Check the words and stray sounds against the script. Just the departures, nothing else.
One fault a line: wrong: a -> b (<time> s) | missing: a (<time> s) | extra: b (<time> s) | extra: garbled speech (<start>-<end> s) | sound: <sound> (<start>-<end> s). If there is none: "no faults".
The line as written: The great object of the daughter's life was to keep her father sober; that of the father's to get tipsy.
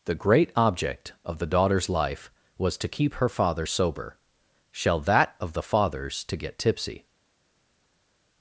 extra: shall (4.7 s)